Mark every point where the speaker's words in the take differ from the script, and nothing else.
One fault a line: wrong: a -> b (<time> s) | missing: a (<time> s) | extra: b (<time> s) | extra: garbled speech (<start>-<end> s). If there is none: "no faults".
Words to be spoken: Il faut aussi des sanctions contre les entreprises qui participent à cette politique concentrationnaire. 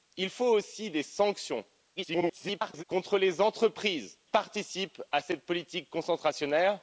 extra: garbled speech (2.0-2.8 s)
missing: qui (4.2 s)